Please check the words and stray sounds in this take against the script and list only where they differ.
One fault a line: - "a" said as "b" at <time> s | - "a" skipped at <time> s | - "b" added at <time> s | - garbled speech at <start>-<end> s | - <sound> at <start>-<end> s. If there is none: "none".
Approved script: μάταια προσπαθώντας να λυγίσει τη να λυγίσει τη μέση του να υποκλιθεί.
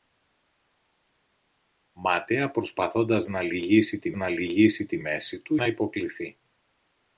none